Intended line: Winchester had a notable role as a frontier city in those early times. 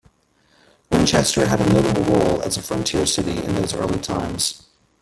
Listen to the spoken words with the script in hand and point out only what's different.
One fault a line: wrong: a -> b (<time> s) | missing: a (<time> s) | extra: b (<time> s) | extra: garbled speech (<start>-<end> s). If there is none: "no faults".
no faults